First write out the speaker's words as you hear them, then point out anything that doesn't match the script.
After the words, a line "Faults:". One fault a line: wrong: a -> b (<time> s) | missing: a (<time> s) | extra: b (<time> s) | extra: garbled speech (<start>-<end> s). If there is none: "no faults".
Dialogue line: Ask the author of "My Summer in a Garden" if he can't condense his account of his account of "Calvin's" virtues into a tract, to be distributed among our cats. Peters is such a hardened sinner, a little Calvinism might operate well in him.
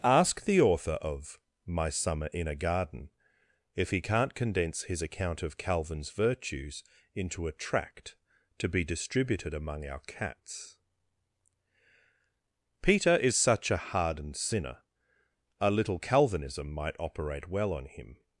Ask the author of "My Summer in a Garden" if he can't condense his account of "Calvin's" virtues into a tract, to be distributed among our cats. Peter is such a hardened sinner, a little Calvinism might operate well on him.
Faults:
missing: his account of (5.6 s)
wrong: Peters -> Peter (12.8 s)
wrong: in -> on (17.7 s)